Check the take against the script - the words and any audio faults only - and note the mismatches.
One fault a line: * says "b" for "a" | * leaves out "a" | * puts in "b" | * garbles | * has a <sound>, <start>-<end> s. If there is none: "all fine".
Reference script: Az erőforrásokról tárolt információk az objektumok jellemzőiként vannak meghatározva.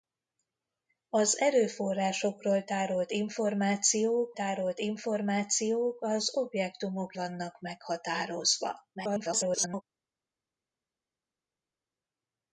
* puts in "tárolt információk"
* leaves out "jellemzőiként"
* garbles